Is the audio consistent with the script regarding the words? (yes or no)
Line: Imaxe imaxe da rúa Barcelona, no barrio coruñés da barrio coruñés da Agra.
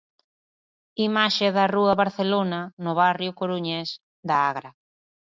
no